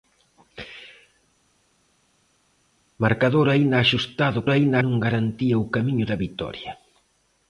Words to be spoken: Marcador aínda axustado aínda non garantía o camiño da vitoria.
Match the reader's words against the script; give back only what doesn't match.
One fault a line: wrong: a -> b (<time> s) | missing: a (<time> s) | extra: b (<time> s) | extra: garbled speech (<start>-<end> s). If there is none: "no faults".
no faults